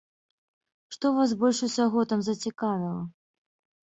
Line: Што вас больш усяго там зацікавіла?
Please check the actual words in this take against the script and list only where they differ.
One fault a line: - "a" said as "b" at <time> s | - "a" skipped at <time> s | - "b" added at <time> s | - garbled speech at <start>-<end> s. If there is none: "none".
none